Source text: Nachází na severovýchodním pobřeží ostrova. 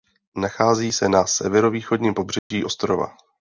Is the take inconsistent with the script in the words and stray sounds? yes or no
yes